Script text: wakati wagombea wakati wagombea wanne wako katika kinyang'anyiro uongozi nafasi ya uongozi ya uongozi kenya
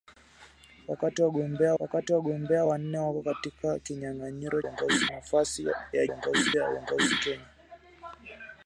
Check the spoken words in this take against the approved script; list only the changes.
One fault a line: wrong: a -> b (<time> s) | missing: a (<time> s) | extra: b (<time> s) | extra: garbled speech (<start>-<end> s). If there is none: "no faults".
no faults